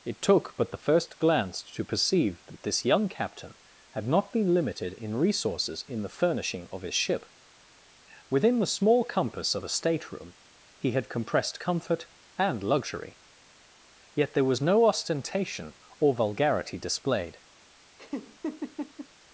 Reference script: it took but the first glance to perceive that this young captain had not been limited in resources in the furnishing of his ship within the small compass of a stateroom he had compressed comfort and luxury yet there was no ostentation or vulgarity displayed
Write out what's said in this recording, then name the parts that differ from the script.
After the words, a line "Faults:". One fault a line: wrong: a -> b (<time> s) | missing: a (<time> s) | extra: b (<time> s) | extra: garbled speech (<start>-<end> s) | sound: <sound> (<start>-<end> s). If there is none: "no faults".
it took but the first glance to perceive that this young captain had not been limited in resources in the furnishing of his ship within the small compass of a stateroom he had compressed comfort and luxury yet there was no ostentation or vulgarity displayed
Faults:
sound: laugh (18.0-19.1 s)